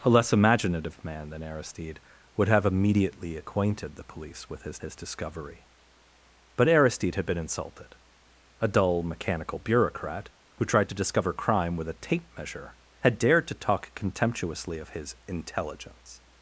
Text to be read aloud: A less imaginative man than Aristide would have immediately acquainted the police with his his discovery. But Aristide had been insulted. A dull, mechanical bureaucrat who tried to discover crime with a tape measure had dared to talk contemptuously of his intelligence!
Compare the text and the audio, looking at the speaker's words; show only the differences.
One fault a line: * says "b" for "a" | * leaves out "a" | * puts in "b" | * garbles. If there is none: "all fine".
all fine